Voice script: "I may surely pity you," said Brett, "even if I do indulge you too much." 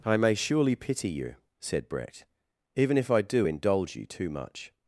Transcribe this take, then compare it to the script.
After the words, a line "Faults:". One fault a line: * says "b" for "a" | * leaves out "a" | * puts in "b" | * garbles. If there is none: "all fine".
"I may surely pity you," said Brett, "even if I do indulge you too much."
Faults:
all fine